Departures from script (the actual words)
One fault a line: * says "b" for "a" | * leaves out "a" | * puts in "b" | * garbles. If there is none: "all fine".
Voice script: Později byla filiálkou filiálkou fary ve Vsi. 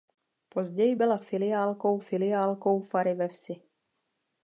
all fine